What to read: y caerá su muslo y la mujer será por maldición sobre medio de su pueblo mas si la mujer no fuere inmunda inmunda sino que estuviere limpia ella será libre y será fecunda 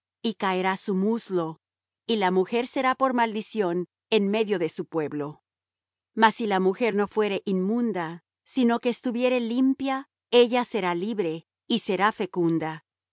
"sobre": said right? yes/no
no